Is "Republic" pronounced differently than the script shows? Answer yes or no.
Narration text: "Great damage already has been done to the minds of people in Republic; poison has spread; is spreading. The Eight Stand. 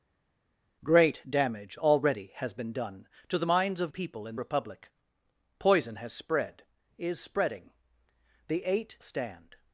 no